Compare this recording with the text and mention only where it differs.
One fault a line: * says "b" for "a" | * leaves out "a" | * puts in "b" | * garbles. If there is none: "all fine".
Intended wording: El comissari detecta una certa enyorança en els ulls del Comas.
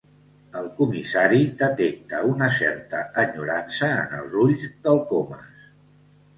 all fine